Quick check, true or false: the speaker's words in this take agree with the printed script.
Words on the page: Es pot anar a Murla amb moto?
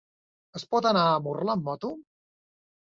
true